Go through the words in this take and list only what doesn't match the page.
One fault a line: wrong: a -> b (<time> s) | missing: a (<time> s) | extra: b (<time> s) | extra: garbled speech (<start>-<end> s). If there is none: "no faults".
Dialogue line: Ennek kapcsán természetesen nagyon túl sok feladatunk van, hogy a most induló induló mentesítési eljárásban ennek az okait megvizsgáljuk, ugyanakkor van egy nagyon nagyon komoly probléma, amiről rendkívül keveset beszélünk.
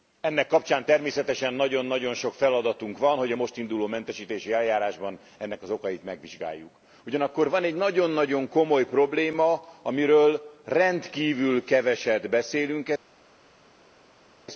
wrong: túl -> nagyon (1.9 s)
missing: induló (3.9 s)